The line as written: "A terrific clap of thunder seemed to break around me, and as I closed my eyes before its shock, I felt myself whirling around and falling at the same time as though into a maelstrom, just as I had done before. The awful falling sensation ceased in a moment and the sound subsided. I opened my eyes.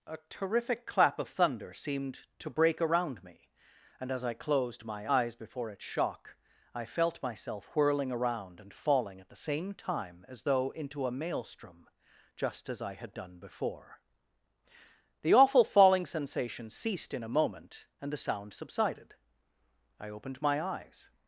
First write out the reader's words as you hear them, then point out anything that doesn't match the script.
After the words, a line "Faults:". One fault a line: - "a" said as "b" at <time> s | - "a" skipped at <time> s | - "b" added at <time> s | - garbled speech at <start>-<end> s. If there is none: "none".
"A terrific clap of thunder seemed to break around me, and as I closed my eyes before its shock, I felt myself whirling around and falling at the same time as though into a maelstrom, just as I had done before. The awful falling sensation ceased in a moment and the sound subsided. I opened my eyes.
Faults:
none